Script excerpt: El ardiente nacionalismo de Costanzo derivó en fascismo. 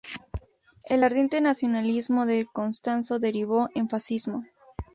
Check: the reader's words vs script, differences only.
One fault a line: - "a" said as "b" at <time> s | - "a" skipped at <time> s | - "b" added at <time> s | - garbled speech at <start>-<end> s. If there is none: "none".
none